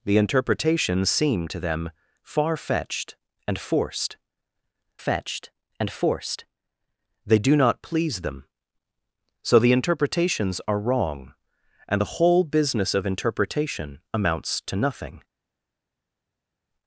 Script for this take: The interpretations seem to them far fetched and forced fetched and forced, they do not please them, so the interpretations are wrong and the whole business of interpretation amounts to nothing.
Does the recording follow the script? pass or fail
pass